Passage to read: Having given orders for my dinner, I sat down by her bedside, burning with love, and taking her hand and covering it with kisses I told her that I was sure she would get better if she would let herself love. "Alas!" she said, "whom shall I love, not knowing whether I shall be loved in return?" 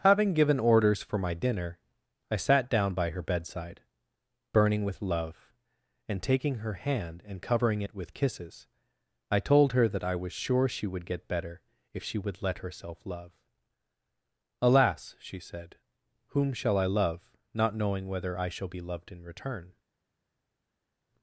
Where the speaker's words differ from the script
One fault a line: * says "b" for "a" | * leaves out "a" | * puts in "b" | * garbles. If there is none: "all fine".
all fine